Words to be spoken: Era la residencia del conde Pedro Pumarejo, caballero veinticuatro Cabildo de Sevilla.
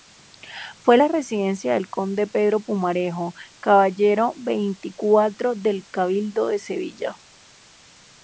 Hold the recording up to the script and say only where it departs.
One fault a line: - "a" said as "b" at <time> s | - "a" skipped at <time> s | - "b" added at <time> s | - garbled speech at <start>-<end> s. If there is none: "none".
- "Era" said as "Fue" at 0.8 s
- "del" added at 5.6 s